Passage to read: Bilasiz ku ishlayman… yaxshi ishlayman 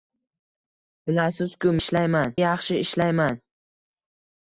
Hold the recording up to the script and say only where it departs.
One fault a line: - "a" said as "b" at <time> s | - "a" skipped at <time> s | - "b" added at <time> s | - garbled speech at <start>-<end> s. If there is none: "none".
none